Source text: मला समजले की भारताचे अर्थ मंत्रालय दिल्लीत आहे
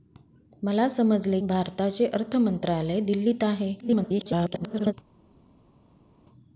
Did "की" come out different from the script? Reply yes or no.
yes